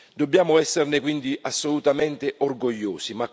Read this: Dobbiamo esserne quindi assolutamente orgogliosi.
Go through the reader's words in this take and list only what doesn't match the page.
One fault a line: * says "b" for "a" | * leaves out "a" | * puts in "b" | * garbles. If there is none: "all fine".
all fine